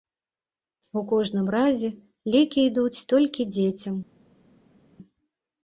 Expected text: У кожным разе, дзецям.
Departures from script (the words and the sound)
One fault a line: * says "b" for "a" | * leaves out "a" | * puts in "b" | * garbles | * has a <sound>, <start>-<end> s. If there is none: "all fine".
* puts in "лекі ідуць толькі"